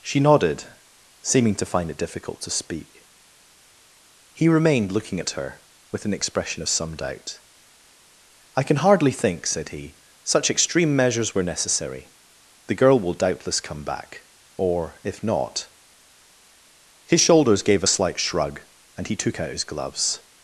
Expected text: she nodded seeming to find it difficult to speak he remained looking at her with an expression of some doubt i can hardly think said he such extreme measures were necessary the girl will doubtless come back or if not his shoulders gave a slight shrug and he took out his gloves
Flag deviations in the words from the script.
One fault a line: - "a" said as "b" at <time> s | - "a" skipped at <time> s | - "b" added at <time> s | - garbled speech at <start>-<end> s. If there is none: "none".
none